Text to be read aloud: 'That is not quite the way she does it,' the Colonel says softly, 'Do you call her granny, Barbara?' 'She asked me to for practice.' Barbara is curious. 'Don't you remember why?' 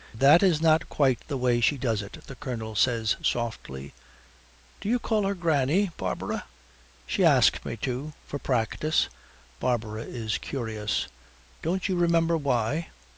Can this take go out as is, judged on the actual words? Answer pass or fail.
pass